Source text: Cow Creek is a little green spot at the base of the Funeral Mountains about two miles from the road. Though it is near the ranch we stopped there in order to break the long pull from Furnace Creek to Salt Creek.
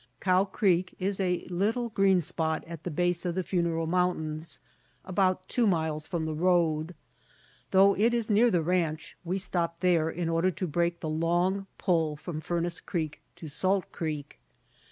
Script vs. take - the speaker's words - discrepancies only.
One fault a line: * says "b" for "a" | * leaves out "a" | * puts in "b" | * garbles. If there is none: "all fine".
all fine